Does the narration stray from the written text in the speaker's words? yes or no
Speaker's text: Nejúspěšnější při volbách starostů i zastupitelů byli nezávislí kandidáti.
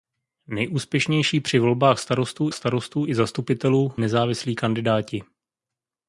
yes